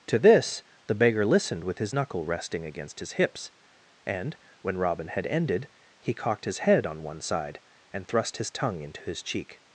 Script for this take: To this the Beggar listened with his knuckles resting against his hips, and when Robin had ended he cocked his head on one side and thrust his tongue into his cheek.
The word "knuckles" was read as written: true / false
false